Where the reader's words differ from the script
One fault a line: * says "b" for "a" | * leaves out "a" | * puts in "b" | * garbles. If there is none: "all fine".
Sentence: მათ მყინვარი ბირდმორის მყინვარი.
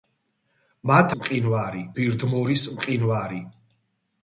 all fine